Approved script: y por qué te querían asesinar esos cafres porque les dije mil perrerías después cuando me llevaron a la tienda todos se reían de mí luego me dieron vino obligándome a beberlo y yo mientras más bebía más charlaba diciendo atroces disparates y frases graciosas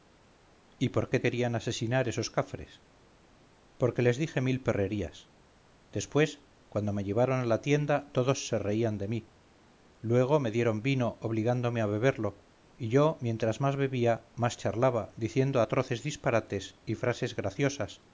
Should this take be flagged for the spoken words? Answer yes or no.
yes